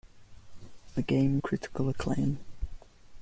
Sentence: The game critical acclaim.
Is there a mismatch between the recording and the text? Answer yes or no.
no